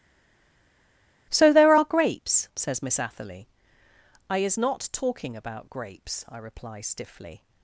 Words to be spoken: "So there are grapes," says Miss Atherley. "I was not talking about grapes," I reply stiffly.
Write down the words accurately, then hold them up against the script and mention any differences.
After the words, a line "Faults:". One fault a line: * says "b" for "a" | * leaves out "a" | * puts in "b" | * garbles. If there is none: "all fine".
"So there are grapes," says Miss Atherley. "I is not talking about grapes," I reply stiffly.
Faults:
* says "is" for "was"